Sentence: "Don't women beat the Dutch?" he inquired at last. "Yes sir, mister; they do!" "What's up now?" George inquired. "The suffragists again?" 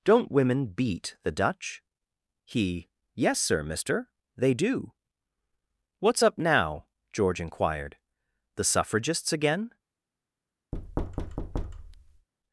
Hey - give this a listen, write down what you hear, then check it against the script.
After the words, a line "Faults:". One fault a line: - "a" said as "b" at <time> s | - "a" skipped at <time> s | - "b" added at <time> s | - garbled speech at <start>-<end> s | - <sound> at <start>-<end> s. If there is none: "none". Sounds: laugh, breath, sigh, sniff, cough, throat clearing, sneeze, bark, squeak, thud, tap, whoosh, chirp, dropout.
"Don't women beat the Dutch?" he. "Yes sir, mister; they do!" "What's up now?" George inquired. "The suffragists again?"
Faults:
- "inquired at last" skipped at 2.9 s
- thud at 10.7-12.3 s